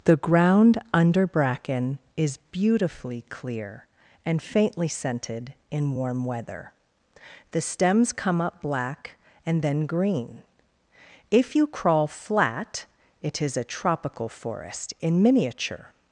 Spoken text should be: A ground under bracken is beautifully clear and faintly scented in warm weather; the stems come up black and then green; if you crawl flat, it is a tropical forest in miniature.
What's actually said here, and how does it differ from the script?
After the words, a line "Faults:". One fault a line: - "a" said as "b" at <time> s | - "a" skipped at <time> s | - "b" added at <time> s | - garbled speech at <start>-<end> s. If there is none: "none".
The ground under bracken is beautifully clear and faintly scented in warm weather; the stems come up black and then green; if you crawl flat, it is a tropical forest in miniature.
Faults:
- "A" said as "The" at 0.1 s